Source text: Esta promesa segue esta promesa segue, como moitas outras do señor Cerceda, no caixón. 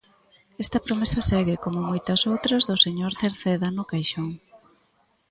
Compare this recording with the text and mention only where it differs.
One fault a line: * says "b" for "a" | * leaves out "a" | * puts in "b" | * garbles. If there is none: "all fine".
* leaves out "esta promesa segue"